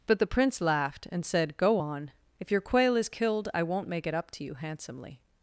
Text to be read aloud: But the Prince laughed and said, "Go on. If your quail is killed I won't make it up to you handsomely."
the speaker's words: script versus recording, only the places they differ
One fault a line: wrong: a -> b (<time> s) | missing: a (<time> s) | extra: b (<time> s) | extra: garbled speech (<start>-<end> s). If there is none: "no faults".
no faults